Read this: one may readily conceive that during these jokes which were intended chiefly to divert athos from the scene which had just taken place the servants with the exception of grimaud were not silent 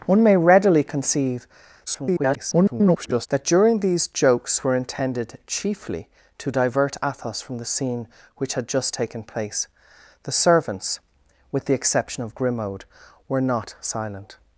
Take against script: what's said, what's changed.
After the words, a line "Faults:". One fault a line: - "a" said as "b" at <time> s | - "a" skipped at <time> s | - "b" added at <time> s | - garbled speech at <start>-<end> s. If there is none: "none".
one may readily conceive [garbled] that during these jokes were intended chiefly to divert athos from the scene which had just taken place the servants with the exception of grimaud were not silent
Faults:
- garbled speech at 1.9-3.3 s
- "which" skipped at 4.6 s